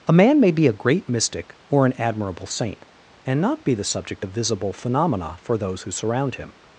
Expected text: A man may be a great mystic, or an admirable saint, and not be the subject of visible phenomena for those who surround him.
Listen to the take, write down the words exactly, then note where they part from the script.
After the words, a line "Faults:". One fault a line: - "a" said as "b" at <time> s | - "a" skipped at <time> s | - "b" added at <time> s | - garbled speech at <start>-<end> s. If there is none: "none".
A man may be a great mystic, or an admirable saint, and not be the subject of visible phenomena for those who surround him.
Faults:
none